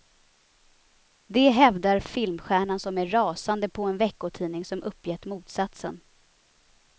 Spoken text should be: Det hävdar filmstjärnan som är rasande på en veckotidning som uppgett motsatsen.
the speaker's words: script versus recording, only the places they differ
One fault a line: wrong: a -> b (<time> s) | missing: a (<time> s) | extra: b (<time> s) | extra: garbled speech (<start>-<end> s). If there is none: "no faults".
no faults